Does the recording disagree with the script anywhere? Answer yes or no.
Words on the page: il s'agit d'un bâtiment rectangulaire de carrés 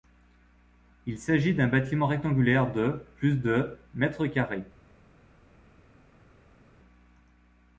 yes